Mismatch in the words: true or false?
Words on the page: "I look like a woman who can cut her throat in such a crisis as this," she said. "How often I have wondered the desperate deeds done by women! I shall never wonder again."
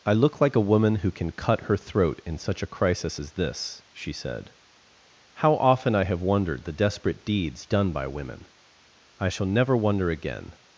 false